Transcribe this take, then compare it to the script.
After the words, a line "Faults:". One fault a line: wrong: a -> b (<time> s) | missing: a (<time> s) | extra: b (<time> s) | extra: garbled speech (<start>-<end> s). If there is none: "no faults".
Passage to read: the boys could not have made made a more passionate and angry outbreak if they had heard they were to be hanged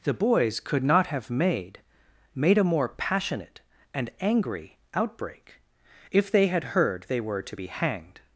the boys could not have made made a more passionate and angry outbreak if they had heard they were to be hanged
Faults:
no faults